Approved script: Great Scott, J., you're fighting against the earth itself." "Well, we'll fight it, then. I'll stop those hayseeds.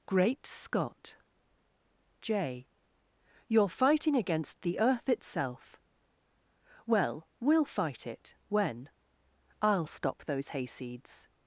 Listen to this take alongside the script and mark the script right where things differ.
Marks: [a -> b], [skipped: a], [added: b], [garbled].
Great Scott, J., you're fighting against the earth itself." "Well, we'll fight it, [then. -> when] I'll stop those hayseeds.